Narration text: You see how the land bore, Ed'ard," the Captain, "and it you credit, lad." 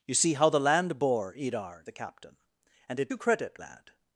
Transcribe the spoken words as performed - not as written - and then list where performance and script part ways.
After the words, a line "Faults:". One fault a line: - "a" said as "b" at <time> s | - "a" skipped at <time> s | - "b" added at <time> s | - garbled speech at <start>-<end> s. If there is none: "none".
You see how the land bore, Ed'ard," the Captain, "and it you credit, lad."
Faults:
none